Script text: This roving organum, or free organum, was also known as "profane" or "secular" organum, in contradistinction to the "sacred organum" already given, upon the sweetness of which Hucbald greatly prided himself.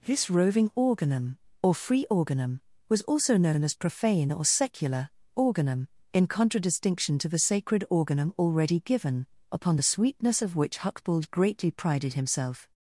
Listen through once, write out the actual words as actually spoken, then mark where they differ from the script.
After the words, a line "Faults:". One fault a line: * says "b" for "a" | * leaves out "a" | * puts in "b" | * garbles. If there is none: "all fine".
This roving organum, or free organum, was also known as "profane" or "secular" organum, in contradistinction to the "sacred organum" already given, upon the sweetness of which Hucbald greatly prided himself.
Faults:
all fine